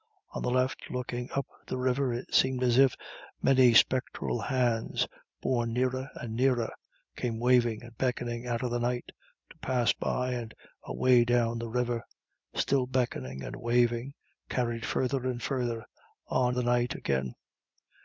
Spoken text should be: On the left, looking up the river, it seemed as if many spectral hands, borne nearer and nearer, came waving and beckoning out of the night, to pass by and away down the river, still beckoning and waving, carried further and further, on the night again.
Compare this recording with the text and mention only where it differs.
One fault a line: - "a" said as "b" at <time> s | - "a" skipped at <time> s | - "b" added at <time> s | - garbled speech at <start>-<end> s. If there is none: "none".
none